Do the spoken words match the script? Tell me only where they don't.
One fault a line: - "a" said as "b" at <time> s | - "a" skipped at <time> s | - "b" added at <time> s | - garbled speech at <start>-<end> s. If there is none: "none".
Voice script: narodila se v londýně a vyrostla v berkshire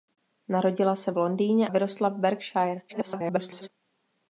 - "a" skipped at 1.7 s
- garbled speech at 2.9-3.7 s